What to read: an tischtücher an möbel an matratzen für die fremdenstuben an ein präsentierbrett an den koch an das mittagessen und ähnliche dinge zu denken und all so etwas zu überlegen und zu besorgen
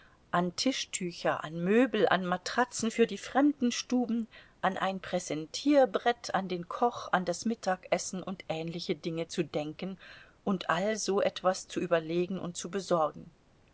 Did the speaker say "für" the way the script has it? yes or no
yes